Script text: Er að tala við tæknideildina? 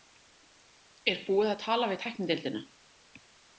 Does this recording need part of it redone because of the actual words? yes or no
yes